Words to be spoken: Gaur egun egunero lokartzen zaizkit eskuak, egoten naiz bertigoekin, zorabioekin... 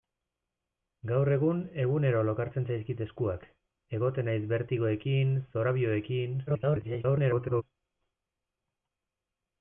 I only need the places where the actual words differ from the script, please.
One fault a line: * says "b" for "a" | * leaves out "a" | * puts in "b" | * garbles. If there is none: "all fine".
* garbles